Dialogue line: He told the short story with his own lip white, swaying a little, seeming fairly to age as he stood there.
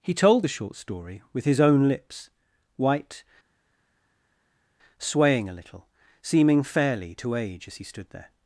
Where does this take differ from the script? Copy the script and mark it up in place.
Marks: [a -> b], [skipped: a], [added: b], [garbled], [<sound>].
He told the short story with his own [lip -> lips] white, swaying a little, seeming fairly to age as he stood there.